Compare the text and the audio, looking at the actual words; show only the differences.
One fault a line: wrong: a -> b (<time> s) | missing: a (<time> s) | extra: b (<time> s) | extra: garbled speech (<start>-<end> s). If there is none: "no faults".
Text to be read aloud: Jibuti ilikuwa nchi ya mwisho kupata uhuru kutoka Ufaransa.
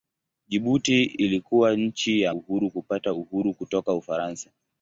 wrong: mwisho -> uhuru (2.3 s)